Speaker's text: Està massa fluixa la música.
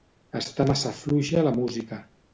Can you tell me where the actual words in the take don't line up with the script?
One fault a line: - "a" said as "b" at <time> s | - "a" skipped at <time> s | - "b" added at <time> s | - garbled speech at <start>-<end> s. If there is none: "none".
none